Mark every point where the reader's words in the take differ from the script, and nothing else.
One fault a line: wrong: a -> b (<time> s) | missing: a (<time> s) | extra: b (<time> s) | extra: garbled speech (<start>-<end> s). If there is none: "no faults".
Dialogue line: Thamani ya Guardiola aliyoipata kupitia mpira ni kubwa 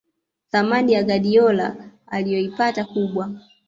missing: kupitia mpira ni (2.8 s)